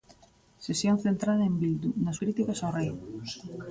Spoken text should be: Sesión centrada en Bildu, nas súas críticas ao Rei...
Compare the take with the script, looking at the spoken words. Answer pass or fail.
fail